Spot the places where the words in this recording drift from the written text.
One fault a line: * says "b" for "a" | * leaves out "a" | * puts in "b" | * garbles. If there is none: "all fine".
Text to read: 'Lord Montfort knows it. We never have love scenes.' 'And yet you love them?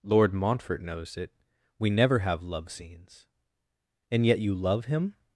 * says "him" for "them"